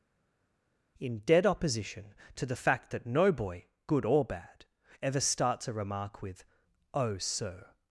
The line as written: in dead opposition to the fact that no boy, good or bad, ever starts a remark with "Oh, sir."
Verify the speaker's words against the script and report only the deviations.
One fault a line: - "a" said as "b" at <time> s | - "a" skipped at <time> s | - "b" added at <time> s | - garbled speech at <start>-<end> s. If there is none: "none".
none